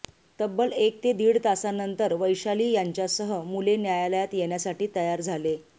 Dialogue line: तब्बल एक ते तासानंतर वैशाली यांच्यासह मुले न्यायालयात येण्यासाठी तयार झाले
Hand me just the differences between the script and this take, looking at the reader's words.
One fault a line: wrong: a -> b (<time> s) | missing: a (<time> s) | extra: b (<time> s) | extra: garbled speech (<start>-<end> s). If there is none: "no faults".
extra: दीड (1.1 s)